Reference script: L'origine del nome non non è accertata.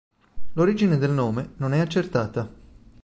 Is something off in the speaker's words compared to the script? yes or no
yes